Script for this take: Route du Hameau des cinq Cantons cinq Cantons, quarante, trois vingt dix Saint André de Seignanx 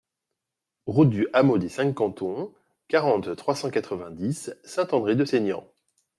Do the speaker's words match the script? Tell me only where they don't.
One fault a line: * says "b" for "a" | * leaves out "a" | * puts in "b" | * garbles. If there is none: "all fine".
* says "quarante trois cent quatre" for "cinq Cantons quarante trois"